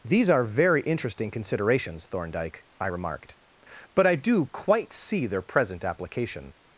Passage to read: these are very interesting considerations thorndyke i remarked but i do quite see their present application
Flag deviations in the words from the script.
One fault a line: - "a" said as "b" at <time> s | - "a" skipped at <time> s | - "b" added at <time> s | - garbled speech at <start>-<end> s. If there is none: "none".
none